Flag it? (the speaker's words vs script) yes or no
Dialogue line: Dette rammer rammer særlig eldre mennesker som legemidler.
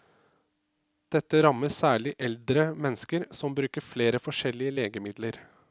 yes